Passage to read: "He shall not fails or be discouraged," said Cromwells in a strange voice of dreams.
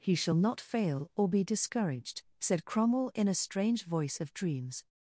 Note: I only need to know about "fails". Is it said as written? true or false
false